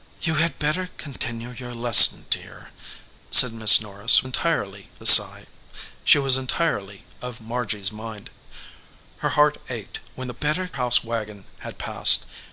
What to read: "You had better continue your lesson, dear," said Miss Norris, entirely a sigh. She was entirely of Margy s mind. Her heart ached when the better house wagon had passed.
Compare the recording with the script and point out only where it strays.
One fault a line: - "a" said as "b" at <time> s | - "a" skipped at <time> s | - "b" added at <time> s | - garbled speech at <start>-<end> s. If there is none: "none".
none